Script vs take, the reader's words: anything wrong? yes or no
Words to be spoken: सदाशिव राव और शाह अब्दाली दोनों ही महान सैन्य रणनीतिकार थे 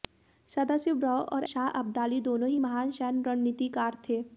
no